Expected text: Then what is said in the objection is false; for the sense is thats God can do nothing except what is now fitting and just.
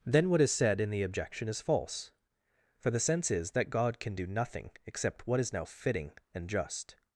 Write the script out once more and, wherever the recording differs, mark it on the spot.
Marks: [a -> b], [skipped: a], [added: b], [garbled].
Then what is said in the objection is false; for the sense is [thats -> that] God can do nothing except what is now fitting and just.